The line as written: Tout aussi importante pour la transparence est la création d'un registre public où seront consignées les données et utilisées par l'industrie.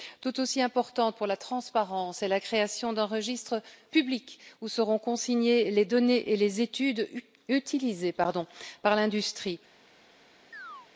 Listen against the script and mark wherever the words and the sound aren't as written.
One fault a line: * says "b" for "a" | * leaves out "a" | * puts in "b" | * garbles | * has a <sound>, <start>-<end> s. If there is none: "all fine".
* puts in "les études"
* has a chirp, 10.5-10.9 s